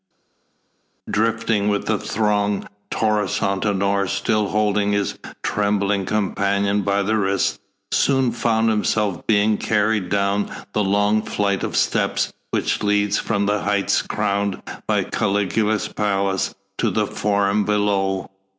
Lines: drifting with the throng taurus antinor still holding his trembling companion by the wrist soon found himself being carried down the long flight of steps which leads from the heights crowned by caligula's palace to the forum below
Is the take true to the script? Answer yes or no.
yes